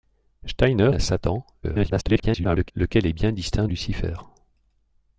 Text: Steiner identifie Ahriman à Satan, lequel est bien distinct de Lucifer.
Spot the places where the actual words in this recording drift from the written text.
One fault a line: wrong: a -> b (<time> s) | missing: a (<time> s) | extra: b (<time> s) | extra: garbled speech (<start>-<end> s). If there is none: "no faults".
missing: identifie Ahriman (0.9 s)
extra: garbled speech (1.6-2.7 s)
missing: de (3.7 s)